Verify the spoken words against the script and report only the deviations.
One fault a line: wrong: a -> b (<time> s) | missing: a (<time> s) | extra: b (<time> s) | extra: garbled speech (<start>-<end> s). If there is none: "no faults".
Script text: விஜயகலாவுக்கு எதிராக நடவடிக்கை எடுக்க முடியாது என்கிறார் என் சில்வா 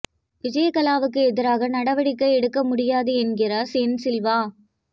no faults